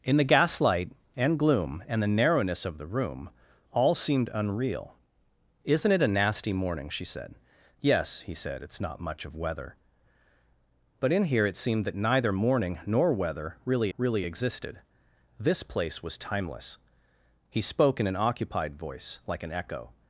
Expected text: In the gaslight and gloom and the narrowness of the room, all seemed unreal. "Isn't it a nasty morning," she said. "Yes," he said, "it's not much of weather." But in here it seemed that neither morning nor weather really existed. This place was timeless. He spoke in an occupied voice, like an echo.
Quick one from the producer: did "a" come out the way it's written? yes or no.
yes